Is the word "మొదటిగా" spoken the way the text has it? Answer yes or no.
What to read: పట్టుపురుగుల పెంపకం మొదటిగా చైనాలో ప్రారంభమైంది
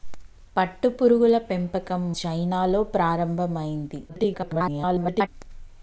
no